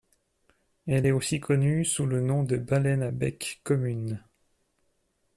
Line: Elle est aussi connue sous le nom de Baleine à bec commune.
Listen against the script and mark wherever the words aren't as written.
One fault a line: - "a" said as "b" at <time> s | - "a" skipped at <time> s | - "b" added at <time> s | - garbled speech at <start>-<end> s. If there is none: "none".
none